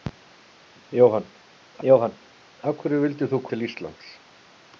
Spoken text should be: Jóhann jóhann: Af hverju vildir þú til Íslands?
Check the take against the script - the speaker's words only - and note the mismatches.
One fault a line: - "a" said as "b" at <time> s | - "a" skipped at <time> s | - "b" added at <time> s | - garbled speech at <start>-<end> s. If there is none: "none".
none